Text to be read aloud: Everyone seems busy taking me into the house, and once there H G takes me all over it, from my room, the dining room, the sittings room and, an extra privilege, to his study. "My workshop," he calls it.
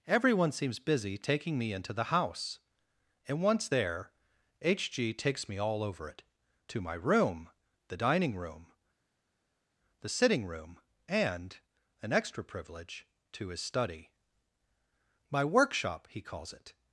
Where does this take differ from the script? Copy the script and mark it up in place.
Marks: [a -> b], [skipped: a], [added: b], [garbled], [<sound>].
Everyone seems busy taking me into the house, and once there H G takes me all over it, [from -> to] my room, the dining room, the [sittings -> sitting] room and, an extra privilege, to his study. "My workshop," he calls it.